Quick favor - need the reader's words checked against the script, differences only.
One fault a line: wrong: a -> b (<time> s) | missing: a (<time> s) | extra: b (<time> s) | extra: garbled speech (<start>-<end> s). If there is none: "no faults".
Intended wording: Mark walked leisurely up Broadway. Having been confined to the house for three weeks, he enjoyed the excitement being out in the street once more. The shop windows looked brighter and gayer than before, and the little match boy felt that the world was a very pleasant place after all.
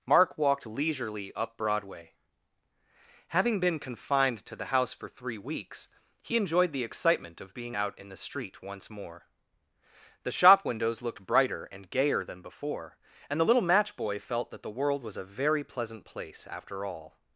extra: of (7.4 s)